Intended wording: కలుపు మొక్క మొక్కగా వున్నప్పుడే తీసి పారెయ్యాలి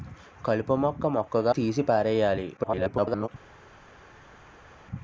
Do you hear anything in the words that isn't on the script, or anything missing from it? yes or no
yes